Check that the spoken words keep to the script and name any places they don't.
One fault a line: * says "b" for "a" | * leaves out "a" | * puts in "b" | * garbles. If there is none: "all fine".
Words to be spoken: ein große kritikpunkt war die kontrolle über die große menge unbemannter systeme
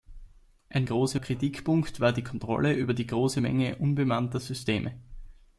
all fine